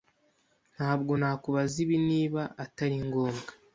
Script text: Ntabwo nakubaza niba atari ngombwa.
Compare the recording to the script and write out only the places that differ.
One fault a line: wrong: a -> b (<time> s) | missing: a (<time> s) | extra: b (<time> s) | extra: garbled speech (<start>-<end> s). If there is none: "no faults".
extra: ibi (1.8 s)